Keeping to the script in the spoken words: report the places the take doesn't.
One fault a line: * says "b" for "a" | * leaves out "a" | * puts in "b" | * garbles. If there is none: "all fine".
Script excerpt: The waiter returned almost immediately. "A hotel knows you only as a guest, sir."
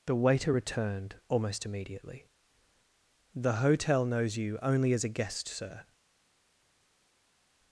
* says "The" for "A"